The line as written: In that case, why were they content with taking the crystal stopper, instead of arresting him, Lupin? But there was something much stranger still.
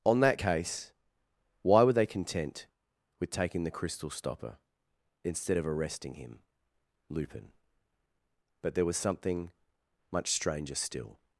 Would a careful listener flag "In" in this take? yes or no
yes